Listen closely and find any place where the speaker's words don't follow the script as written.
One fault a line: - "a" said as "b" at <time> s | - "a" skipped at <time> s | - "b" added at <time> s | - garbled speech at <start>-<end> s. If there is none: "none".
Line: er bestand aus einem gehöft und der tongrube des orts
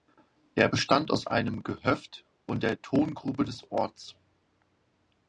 none